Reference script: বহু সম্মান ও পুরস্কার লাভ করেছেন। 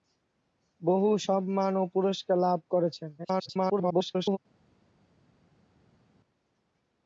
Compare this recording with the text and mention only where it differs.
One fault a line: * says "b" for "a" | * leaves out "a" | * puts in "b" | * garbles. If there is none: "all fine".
* garbles